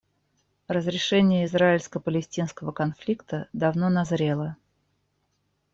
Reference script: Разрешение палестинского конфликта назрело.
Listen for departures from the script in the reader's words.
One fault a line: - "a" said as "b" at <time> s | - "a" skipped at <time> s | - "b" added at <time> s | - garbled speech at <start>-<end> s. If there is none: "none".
- "израильско" added at 1.4 s
- "давно" added at 3.5 s